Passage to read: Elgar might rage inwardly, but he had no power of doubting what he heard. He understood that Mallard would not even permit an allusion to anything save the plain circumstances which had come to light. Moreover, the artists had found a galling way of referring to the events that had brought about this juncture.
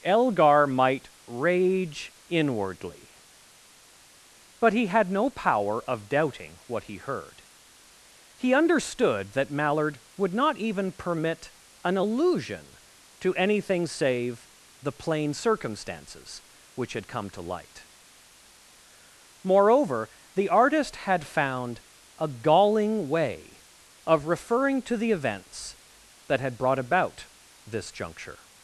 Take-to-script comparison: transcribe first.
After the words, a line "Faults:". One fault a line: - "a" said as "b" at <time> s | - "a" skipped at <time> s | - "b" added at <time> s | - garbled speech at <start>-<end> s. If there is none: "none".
Elgar might rage inwardly, but he had no power of doubting what he heard. He understood that Mallard would not even permit an allusion to anything save the plain circumstances which had come to light. Moreover, the artist had found a galling way of referring to the events that had brought about this juncture.
Faults:
- "artists" said as "artist" at 20.5 s